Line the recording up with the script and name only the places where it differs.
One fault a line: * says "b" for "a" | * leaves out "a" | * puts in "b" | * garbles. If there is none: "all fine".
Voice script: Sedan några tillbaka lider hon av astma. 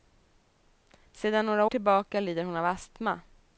all fine